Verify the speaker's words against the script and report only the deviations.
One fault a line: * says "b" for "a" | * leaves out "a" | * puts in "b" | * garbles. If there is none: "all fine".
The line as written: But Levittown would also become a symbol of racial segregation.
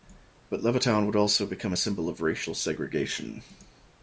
all fine